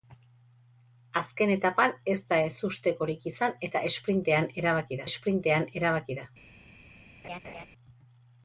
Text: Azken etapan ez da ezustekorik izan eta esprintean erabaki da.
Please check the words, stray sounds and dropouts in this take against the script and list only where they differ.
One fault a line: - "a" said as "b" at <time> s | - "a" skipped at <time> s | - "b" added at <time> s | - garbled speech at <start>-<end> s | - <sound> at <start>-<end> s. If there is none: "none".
- "esprintean erabaki" added at 5.1 s
- laugh at 7.2-7.7 s